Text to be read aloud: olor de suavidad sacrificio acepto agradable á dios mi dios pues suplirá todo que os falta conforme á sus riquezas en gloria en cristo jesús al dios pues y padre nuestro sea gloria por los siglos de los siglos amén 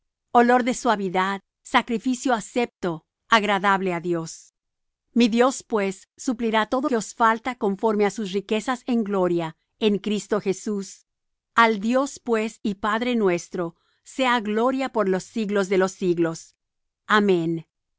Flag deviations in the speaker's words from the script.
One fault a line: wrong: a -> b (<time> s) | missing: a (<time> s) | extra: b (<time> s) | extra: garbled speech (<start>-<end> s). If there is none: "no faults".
no faults